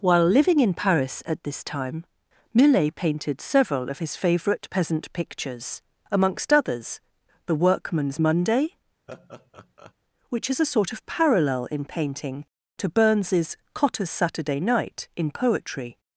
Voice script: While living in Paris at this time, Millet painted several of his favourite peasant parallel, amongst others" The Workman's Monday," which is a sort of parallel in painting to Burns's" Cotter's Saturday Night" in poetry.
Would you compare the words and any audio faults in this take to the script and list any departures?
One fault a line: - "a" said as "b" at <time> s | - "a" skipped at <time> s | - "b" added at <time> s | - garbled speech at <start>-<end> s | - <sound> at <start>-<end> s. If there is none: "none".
- "parallel" said as "pictures" at 5.1 s
- laugh at 9.1-9.9 s